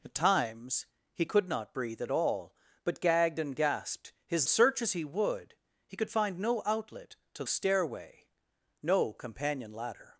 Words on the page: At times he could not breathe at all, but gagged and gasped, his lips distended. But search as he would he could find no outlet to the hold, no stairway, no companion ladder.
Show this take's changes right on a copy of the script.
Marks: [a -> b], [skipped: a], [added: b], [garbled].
At times he could not breathe at all, but gagged and gasped, his [skipped: lips distended. But] search as he would he could find no outlet to [skipped: the hold, no] stairway, no companion ladder.